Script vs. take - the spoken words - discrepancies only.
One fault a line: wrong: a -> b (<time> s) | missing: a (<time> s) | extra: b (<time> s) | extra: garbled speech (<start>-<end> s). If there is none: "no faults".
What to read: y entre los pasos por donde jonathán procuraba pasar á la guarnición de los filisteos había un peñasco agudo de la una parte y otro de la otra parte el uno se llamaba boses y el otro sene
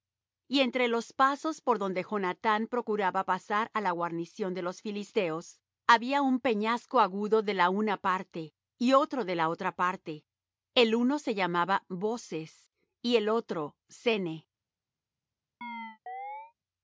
no faults